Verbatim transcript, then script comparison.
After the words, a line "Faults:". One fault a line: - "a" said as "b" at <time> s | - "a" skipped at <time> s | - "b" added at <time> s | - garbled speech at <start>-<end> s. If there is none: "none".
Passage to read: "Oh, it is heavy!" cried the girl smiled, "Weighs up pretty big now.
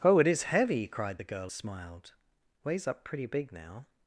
"Oh, it is heavy!" cried the girl smiled, "Weighs up pretty big now.
Faults:
none